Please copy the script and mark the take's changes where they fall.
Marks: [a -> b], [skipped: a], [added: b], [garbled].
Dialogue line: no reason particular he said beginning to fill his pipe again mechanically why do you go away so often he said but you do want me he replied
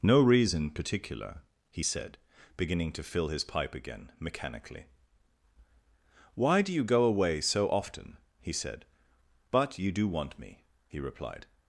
no reason particular he said beginning to fill his pipe again mechanically why do you go away so often he said but you do want me he replied